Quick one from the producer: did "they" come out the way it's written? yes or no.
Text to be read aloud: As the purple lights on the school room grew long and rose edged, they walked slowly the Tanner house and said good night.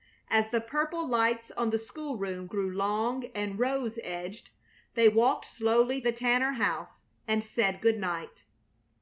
yes